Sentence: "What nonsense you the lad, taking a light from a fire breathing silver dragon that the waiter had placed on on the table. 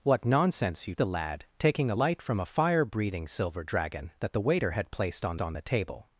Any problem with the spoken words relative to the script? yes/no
no